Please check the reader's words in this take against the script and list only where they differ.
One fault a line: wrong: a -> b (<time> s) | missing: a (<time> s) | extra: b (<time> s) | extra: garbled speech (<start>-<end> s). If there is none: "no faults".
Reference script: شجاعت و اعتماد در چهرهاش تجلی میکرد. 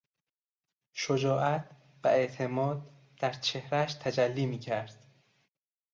no faults